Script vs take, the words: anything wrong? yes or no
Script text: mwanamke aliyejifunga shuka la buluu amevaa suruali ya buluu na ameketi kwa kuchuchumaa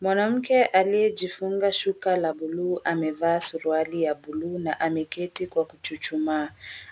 no